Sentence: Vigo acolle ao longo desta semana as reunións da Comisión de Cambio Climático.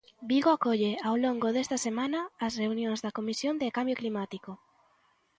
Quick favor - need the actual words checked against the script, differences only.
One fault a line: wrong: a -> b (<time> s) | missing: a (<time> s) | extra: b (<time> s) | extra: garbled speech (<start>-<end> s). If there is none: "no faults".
no faults